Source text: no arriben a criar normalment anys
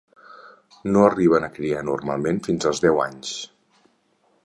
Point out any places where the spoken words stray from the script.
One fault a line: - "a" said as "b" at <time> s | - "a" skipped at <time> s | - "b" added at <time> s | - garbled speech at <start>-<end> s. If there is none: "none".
- "fins als deu" added at 2.5 s